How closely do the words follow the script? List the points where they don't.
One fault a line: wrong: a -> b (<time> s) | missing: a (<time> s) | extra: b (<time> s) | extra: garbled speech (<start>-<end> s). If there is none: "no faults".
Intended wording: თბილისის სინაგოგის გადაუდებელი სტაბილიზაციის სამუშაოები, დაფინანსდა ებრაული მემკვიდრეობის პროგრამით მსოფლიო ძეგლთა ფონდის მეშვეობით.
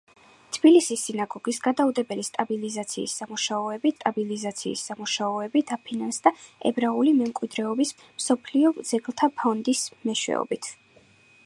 extra: სტაბილიზაციის სამუშაოები (4.0 s)
missing: პროგრამით (7.9 s)